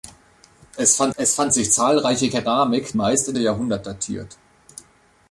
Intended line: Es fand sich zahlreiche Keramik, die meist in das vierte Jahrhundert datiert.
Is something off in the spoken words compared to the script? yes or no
yes